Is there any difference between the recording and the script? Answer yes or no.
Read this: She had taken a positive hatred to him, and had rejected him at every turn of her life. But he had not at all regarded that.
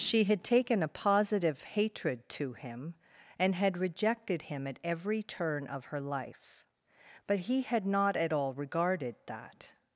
no